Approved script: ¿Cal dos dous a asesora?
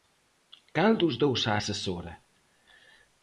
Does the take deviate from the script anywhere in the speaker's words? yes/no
no